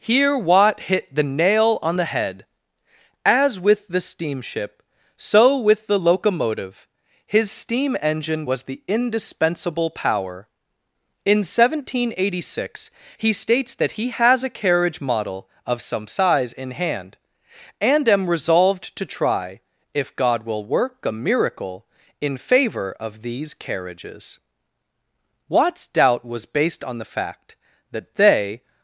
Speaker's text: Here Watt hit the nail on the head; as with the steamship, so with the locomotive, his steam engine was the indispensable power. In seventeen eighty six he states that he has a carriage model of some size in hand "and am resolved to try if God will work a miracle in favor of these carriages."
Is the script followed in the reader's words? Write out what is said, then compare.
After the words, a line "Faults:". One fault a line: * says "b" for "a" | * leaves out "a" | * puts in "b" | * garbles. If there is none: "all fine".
Here Watt hit the nail on the head; as with the steamship, so with the locomotive, his steam engine was the indispensable power. In seventeen eighty six he states that he has a carriage model of some size in hand "and am resolved to try if God will work a miracle in favor of these carriages." Watt's doubt was based on the fact that they
Faults:
* puts in "Watt's doubt was based on the fact that they"